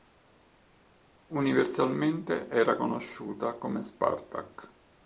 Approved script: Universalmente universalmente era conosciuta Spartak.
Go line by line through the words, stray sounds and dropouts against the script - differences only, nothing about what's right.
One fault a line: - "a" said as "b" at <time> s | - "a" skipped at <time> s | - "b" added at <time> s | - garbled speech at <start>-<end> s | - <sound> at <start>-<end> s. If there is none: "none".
- "universalmente" skipped at 2.5 s
- "come" added at 3.6 s